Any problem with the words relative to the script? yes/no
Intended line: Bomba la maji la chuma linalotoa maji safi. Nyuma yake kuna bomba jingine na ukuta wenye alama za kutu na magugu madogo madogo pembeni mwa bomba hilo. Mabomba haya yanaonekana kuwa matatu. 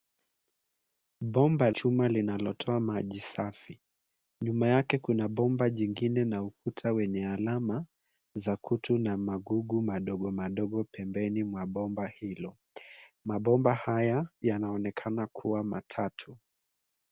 yes